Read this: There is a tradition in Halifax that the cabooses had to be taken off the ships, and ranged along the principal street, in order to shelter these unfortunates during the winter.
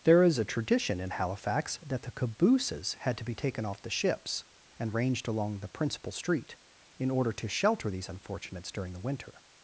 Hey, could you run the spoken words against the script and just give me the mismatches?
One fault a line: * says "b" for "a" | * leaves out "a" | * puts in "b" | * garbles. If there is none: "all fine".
all fine